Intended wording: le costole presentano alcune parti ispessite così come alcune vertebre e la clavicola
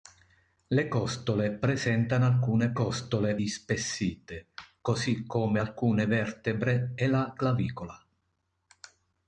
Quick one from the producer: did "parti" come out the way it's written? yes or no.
no